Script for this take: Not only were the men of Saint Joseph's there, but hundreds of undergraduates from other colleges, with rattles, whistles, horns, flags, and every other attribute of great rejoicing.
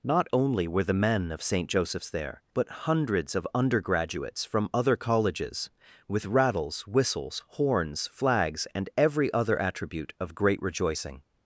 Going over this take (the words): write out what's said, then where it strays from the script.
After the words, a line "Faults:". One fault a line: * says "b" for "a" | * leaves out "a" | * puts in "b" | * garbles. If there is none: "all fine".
Not only were the men of Saint Joseph's there, but hundreds of undergraduates from other colleges, with rattles, whistles, horns, flags, and every other attribute of great rejoicing.
Faults:
all fine